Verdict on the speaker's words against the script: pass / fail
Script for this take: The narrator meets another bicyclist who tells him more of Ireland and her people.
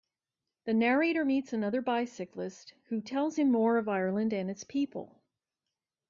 fail